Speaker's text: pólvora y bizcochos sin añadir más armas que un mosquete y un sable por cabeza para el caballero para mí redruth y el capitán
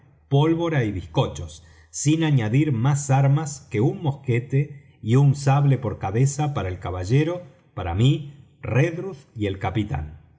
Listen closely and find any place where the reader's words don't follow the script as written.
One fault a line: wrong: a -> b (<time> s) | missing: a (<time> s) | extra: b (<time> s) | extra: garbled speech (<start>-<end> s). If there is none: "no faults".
no faults